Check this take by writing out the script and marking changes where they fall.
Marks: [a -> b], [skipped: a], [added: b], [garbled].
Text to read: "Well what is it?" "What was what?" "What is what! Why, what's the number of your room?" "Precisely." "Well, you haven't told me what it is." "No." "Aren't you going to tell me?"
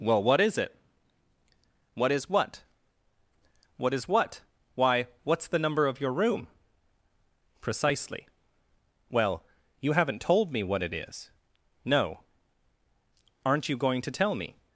"Well what is it?" "What [was -> is] what?" "What is what! Why, what's the number of your room?" "Precisely." "Well, you haven't told me what it is." "No." "Aren't you going to tell me?"